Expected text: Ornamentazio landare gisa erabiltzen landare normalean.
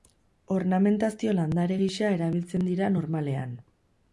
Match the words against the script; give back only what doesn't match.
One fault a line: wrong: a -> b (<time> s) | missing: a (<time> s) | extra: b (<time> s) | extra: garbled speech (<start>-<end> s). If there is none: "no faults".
wrong: landare -> dira (2.7 s)